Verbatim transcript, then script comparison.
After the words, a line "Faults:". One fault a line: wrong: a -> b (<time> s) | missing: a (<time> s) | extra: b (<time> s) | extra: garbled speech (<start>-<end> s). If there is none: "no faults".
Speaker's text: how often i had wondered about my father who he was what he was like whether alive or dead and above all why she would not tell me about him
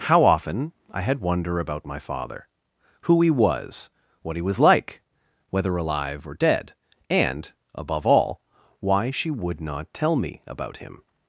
how often i had wonder about my father who he was what he was like whether alive or dead and above all why she would not tell me about him
Faults:
wrong: wondered -> wonder (1.2 s)